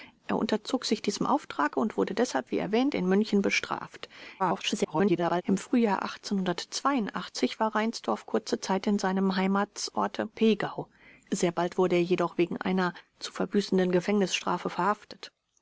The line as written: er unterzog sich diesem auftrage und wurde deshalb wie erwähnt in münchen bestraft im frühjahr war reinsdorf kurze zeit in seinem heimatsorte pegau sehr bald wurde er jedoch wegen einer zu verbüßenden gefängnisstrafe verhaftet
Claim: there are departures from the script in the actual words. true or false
true